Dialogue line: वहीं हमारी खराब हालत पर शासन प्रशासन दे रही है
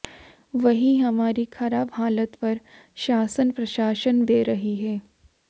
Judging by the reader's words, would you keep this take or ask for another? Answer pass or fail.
pass